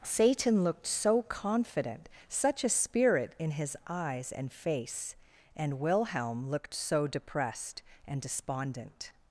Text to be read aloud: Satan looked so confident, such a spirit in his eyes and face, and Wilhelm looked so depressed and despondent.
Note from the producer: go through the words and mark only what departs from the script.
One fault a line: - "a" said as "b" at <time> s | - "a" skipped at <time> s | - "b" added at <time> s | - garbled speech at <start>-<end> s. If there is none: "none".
none